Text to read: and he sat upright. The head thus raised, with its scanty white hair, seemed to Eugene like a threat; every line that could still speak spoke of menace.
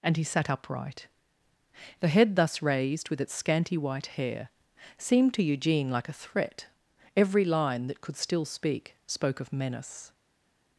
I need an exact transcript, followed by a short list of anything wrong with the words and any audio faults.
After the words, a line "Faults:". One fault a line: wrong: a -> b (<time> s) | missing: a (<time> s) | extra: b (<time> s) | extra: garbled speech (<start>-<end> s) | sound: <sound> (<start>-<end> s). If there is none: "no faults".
and he sat upright. The head thus raised, with its scanty white hair, seemed to Eugene like a threat; every line that could still speak spoke of menace.
Faults:
no faults